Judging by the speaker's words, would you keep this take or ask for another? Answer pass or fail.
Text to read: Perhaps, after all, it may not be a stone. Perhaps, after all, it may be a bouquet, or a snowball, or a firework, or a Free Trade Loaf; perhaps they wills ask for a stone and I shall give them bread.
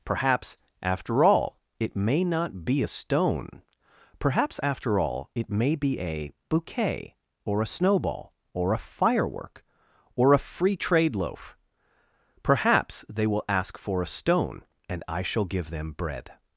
fail